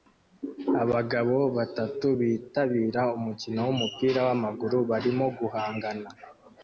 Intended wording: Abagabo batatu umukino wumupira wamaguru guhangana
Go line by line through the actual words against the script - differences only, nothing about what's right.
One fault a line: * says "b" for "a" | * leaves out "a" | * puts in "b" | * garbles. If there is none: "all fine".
* puts in "bitabira"
* puts in "barimo"